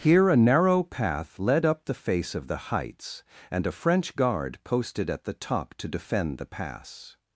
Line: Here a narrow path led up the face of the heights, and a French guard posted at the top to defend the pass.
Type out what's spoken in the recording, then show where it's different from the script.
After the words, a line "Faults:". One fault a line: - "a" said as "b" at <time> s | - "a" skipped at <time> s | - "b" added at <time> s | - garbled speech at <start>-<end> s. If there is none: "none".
Here a narrow path led up the face of the heights, and a French guard posted at the top to defend the pass.
Faults:
none